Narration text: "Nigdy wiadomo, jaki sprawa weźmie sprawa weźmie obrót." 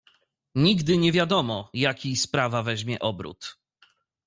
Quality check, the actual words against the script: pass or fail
fail